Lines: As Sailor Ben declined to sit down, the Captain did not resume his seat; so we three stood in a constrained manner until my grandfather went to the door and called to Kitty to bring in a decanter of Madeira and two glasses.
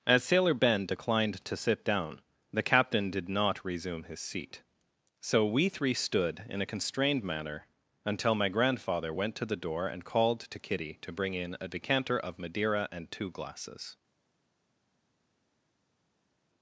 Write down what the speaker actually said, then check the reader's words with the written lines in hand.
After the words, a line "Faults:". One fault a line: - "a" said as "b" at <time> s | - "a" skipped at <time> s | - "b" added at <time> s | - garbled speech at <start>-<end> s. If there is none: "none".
As Sailor Ben declined to sit down, the Captain did not resume his seat; so we three stood in a constrained manner until my grandfather went to the door and called to Kitty to bring in a decanter of Madeira and two glasses.
Faults:
none